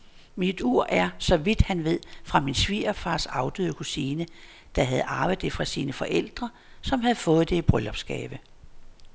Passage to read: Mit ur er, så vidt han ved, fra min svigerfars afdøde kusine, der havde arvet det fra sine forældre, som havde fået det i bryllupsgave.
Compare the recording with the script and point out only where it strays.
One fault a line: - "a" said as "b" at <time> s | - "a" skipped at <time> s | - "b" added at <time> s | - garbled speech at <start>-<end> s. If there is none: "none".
none